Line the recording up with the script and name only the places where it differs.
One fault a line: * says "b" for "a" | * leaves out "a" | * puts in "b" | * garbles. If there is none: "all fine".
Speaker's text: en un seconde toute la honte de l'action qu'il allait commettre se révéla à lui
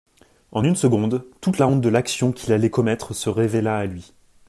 * says "une" for "un"